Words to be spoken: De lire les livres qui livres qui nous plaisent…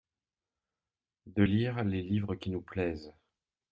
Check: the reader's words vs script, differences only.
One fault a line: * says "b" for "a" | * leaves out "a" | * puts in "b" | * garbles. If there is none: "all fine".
* leaves out "livres qui"